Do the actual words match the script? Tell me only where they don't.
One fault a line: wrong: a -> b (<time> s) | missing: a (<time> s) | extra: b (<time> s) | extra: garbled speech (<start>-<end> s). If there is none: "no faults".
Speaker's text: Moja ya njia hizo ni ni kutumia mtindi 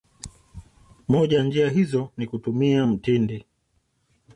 missing: ni (2.3 s)